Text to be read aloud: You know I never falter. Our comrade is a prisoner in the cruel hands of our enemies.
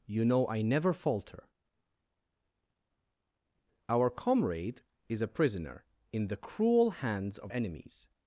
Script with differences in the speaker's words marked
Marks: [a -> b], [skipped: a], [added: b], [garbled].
You know I never falter. Our comrade is a prisoner in the cruel hands of [skipped: our] enemies.